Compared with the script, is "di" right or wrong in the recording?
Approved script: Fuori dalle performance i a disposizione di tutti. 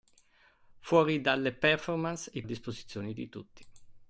right